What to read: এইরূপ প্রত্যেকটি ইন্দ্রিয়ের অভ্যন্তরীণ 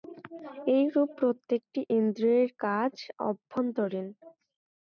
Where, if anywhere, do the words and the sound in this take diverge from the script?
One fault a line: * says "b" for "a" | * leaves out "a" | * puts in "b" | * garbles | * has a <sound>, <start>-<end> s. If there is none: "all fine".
* puts in "কাজ"